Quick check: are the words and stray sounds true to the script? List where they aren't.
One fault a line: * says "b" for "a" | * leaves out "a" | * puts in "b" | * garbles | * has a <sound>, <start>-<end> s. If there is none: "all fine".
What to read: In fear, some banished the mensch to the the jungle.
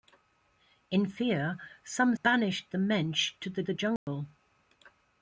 * has a dropout, 4.0-4.1 s